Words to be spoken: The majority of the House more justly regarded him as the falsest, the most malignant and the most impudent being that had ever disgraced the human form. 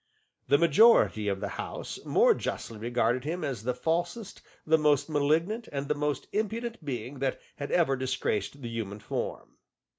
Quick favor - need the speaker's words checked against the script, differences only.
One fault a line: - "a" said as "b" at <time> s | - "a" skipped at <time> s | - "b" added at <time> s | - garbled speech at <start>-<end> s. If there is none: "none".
none